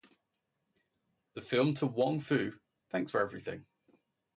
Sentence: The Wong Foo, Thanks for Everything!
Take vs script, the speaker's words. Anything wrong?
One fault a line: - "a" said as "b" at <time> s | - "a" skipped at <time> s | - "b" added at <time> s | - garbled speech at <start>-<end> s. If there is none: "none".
- "film To" added at 1.4 s